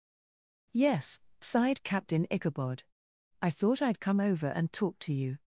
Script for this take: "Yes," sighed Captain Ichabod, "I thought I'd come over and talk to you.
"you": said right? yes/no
yes